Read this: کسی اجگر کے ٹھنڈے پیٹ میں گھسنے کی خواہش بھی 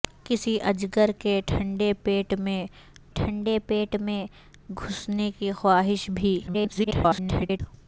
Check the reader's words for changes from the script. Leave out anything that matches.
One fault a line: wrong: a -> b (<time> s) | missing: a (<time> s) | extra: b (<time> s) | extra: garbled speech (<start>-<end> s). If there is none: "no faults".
extra: ٹھنڈے پیٹ میں (3.1 s)
extra: garbled speech (6.5-7.6 s)